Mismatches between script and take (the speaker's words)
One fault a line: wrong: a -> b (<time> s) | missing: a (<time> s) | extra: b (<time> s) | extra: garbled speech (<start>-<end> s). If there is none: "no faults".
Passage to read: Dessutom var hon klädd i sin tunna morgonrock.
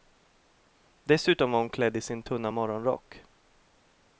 no faults